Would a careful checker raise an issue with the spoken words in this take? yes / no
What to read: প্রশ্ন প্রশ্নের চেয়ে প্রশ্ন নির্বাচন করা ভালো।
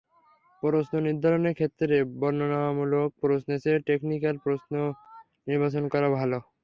yes